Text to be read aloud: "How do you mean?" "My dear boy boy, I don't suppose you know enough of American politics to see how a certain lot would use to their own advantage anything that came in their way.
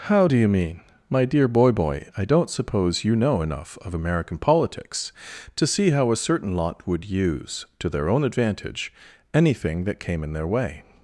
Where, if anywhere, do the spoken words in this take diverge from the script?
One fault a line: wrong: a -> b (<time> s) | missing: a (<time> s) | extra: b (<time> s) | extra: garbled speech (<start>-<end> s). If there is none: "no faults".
no faults